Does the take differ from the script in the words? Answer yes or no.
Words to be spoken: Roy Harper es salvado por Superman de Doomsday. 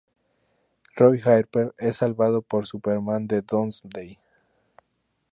no